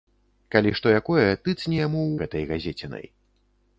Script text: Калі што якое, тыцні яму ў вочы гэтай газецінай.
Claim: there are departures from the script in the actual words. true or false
true